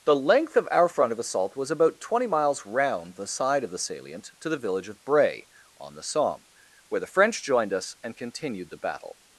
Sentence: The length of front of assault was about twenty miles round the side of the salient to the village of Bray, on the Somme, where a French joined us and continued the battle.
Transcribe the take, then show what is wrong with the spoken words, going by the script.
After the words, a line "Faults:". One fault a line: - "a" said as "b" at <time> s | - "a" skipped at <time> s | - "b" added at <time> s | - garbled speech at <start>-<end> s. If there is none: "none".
The length of our front of assault was about twenty miles round the side of the salient to the village of Bray, on the Somme, where the French joined us and continued the battle.
Faults:
- "our" added at 0.7 s
- "a" said as "the" at 7.0 s